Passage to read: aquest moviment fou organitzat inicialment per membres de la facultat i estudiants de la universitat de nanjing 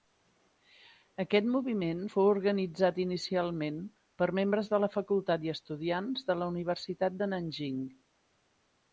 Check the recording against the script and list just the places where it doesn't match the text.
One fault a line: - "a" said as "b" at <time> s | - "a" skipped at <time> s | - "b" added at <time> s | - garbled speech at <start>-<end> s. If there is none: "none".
none